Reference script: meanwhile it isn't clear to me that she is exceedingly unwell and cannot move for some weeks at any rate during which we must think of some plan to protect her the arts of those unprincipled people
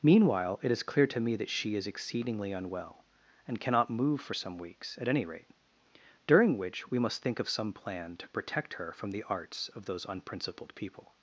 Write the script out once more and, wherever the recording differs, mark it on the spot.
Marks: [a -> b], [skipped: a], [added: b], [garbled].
meanwhile it [isn't -> is] clear to me that she is exceedingly unwell and cannot move for some weeks at any rate during which we must think of some plan to protect her [added: from] the arts of those unprincipled people